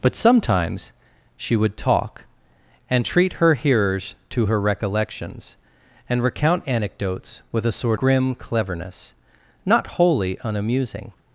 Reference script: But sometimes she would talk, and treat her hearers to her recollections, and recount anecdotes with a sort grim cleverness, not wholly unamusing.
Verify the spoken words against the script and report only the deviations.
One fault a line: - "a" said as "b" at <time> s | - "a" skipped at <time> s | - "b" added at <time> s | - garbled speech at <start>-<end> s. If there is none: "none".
none